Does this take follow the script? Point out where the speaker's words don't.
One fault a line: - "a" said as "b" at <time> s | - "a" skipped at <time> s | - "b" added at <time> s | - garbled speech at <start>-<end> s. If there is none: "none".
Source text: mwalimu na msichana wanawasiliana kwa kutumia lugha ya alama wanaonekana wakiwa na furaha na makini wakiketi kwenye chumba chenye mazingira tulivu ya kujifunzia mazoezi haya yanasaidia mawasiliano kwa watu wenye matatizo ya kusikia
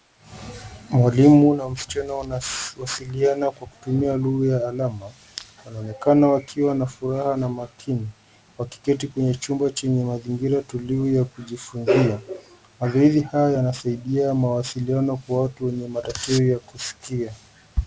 none